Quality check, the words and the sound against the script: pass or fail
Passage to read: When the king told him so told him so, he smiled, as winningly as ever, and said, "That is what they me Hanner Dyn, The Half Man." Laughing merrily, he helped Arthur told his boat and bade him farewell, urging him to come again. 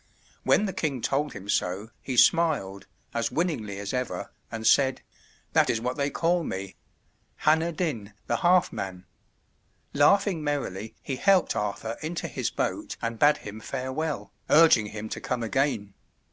fail